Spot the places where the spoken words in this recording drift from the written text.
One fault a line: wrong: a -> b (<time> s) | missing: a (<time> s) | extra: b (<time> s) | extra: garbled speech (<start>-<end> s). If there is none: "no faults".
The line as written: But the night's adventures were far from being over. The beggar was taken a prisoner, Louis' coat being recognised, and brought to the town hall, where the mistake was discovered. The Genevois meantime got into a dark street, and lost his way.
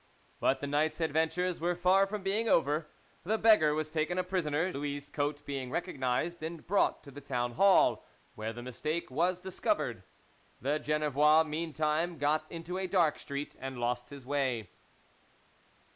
no faults